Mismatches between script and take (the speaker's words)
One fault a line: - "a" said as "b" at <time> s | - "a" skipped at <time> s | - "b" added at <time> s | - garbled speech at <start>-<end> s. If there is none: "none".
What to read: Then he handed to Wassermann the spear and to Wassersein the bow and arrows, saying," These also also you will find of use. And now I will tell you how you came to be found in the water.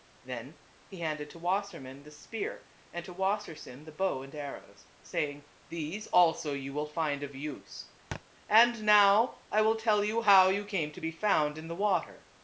- "also" skipped at 6.5 s